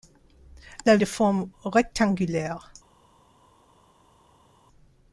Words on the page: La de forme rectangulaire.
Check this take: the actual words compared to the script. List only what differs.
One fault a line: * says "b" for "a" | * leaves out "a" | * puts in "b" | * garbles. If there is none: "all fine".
all fine